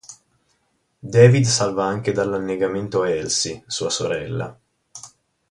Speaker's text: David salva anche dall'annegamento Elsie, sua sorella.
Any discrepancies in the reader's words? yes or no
no